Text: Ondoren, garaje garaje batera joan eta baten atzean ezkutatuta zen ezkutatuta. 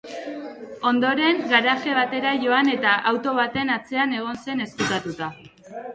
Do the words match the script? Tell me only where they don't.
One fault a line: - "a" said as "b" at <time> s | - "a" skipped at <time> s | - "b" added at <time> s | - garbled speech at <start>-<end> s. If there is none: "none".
- "garaje" skipped at 1.9 s
- "auto" added at 3.1 s
- "ezkutatuta" said as "egon" at 4.2 s